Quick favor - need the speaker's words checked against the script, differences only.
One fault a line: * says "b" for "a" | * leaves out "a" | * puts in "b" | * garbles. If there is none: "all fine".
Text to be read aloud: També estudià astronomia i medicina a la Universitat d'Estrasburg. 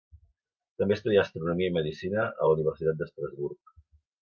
all fine